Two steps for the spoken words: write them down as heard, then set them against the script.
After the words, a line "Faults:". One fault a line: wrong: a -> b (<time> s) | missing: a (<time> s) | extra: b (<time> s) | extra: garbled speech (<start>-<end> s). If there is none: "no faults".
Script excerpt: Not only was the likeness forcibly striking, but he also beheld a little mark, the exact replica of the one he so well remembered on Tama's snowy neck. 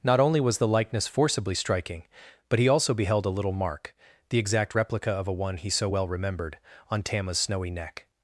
Not only was the likeness forcibly striking, but he also beheld a little mark, the exact replica of a one he so well remembered on Tama's snowy neck.
Faults:
wrong: the -> a (5.3 s)